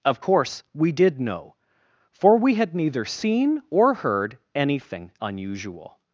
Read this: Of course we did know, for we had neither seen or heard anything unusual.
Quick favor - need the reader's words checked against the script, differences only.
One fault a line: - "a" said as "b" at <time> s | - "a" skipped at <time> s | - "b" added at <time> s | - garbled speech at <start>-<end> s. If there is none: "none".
none